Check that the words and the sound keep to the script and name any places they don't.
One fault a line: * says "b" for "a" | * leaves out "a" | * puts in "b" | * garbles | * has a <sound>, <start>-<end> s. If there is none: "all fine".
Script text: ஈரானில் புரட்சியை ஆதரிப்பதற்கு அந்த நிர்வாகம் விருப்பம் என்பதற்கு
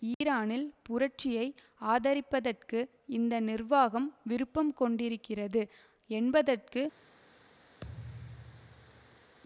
* has a dropout, 0.1-0.2 s
* says "இந்த" for "அந்த"
* puts in "கொண்டிருக்கிறது"
* has a thud, 7.8-9.4 s